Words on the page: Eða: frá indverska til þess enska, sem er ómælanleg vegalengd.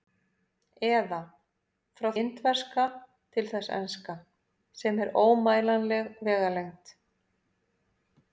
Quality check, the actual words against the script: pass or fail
pass